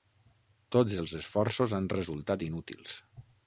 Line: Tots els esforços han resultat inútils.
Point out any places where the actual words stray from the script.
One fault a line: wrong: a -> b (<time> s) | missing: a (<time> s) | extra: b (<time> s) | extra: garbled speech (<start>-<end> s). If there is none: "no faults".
no faults